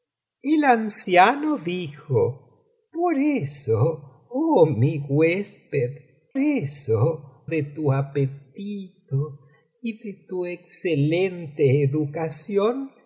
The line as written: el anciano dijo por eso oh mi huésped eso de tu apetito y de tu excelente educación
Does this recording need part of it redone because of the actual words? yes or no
no